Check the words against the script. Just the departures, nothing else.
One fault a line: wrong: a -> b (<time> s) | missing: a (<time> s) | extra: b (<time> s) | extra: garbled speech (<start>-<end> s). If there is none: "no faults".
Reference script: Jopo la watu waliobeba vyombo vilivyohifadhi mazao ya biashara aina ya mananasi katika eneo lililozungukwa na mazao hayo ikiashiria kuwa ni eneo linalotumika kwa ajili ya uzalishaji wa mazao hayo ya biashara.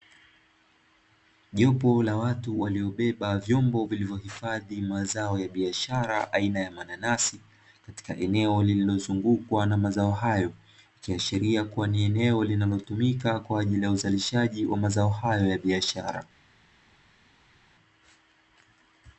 no faults